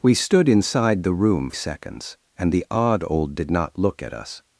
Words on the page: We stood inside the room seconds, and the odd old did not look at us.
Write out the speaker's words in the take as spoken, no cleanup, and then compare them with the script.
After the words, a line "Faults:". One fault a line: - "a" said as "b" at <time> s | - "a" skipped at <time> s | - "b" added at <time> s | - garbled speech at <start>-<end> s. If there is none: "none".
We stood inside the room seconds, and the odd old did not look at us.
Faults:
none